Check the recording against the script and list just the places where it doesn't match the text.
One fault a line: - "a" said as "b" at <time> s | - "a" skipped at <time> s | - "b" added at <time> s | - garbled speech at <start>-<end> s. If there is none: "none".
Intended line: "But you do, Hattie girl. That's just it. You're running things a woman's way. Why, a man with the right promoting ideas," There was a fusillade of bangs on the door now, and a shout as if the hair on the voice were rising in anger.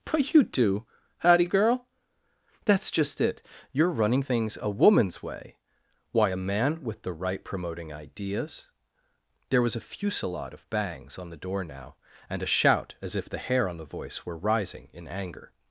none